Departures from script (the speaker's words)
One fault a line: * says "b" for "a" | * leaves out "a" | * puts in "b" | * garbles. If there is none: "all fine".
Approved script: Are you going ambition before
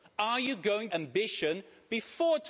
all fine